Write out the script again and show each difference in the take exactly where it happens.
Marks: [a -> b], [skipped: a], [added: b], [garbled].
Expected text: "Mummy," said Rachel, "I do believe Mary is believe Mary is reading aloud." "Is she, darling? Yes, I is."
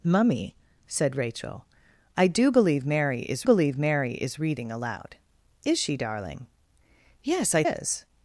"Mummy," said Rachel, "I do believe Mary is believe Mary is reading aloud." "Is she, darling? Yes, I is."